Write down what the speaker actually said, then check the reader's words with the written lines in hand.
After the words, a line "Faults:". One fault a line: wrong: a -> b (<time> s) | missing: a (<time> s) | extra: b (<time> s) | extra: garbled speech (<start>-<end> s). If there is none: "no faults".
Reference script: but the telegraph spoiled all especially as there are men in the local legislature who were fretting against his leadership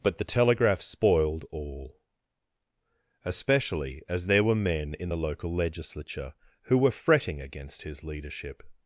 but the telegraph spoiled all especially as there were men in the local legislature who were fretting against his leadership
Faults:
wrong: are -> were (4.4 s)